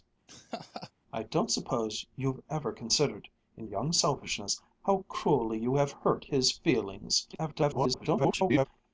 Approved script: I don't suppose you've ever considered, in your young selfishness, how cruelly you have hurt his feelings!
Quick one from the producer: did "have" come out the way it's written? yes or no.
yes